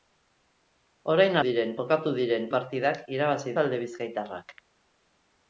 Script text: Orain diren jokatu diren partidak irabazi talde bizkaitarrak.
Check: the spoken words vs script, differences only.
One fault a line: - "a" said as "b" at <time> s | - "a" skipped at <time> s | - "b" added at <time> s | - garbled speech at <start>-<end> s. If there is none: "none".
none